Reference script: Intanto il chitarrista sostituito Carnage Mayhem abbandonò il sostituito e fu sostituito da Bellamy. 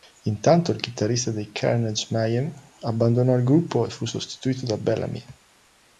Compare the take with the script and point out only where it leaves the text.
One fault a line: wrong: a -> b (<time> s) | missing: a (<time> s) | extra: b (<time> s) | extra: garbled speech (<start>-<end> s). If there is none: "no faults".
wrong: sostituito -> dei (1.3 s)
wrong: sostituito -> gruppo (3.4 s)